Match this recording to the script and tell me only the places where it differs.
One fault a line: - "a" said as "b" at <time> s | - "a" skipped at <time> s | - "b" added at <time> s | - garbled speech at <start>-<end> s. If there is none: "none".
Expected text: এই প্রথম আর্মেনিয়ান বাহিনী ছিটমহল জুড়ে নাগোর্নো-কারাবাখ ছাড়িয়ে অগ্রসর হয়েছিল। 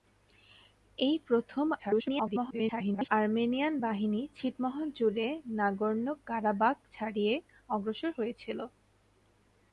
- garbled speech at 1.8-3.1 s